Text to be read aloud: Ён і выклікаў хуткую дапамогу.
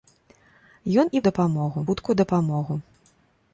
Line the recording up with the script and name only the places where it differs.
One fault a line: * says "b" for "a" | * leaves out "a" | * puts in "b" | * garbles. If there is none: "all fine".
* says "дапамогу" for "выклікаў"